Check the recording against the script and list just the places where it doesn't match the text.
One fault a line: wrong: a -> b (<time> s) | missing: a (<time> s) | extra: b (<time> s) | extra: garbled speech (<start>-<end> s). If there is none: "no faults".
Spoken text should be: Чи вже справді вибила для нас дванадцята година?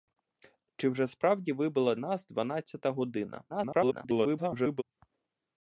missing: для (1.9 s)
extra: garbled speech (3.5-4.8 s)